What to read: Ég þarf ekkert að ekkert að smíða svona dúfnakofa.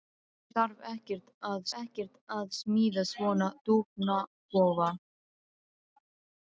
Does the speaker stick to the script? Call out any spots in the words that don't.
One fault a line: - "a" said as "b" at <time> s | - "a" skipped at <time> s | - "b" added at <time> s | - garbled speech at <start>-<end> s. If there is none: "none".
none